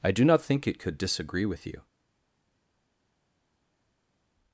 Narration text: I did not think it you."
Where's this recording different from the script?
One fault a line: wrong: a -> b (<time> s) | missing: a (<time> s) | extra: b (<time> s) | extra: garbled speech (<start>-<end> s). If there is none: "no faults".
wrong: did -> do (0.1 s)
extra: could disagree with (0.8 s)